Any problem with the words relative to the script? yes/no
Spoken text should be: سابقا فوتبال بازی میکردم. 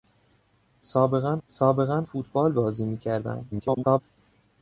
yes